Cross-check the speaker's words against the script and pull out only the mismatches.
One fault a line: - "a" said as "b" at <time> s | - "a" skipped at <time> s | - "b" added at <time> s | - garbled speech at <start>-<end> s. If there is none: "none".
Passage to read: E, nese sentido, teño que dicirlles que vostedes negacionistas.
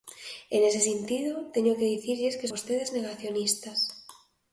none